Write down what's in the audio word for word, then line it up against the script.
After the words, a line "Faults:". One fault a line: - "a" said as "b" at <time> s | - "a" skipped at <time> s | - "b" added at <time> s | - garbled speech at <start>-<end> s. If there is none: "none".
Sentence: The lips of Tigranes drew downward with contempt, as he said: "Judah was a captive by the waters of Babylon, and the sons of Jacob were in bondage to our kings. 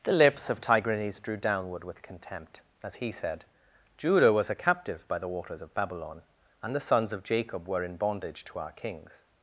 The lips of Tigranes drew downward with contempt, as he said: "Judah was a captive by the waters of Babylon, and the sons of Jacob were in bondage to our kings.
Faults:
none